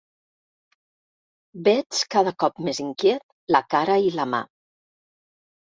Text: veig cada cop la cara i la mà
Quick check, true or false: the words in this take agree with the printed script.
false